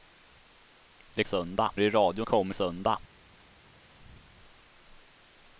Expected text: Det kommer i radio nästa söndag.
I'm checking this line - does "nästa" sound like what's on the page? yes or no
no